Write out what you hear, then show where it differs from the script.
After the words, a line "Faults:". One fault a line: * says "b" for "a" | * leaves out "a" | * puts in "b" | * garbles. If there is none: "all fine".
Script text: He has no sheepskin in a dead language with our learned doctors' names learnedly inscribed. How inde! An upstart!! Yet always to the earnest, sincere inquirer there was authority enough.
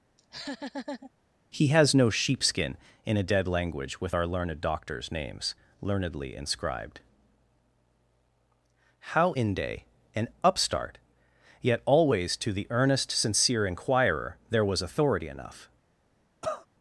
He has no sheepskin in a dead language with our learned doctors' names learnedly inscribed. How inde! An upstart!! Yet always to the earnest, sincere inquirer there was authority enough.
Faults:
all fine